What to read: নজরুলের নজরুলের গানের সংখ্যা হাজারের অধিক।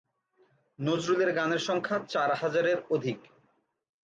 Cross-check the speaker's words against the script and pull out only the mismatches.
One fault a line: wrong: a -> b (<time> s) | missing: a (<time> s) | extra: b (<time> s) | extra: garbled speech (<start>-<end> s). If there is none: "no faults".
missing: নজরুলের (1.3 s)
extra: চার (2.1 s)